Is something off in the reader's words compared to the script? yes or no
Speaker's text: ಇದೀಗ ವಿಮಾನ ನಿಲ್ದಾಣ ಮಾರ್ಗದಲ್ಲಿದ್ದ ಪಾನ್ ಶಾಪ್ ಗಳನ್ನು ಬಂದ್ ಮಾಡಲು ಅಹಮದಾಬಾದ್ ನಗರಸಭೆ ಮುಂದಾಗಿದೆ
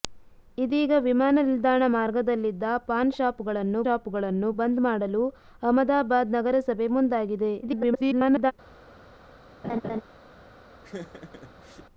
yes